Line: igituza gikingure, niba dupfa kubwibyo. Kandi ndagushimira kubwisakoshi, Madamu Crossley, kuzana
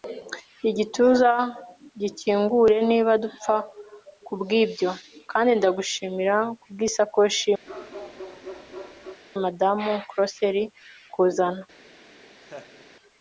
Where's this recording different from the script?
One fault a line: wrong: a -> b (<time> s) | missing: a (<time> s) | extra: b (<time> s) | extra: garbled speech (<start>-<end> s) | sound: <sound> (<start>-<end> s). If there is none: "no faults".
sound: bark (7.7-9.2 s)
sound: laugh (12.4-12.9 s)